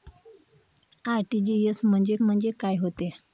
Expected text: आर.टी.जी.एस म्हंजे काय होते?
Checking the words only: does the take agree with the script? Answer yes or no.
no